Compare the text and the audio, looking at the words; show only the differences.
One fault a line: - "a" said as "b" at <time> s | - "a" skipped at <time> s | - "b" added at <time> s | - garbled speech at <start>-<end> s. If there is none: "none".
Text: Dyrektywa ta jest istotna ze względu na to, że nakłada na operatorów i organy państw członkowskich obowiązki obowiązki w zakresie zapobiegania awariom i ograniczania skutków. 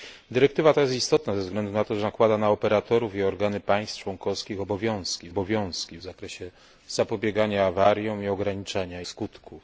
none